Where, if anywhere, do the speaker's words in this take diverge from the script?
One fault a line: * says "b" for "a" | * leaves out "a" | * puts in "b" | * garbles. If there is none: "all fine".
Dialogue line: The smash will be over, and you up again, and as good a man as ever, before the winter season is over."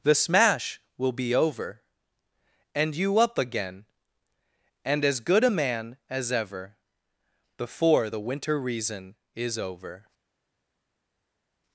* says "reason" for "season"